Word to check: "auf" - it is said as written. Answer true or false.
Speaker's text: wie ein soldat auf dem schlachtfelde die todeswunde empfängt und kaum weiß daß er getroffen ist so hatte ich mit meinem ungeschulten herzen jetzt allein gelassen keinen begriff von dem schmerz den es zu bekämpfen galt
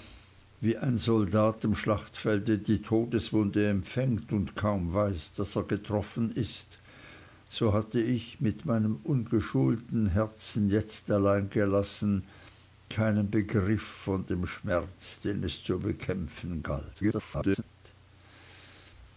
false